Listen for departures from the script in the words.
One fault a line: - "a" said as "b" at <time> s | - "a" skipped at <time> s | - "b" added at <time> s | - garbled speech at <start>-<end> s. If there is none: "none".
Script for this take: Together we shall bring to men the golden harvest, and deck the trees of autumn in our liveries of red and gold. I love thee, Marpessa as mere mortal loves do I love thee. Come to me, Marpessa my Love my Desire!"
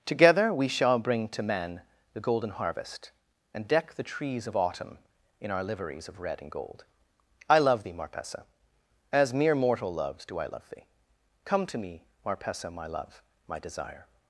none